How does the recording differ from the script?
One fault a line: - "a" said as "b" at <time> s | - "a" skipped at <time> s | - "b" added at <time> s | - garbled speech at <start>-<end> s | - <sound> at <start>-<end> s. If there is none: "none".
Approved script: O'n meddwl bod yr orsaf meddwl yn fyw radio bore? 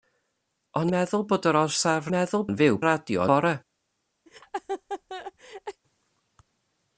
- laugh at 4.3-5.8 s